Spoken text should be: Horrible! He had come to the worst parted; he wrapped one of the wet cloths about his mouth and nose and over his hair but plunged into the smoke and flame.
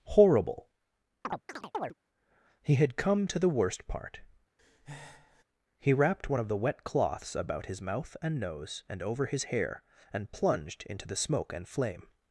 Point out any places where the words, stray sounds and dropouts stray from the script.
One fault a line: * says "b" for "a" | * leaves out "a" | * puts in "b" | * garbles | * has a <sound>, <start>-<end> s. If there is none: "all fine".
* has a chirp, 1.2-1.9 s
* says "part" for "parted"
* has a breath, 4.6-5.4 s
* says "and" for "but"